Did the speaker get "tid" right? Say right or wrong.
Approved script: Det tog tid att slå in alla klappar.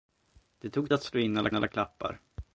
wrong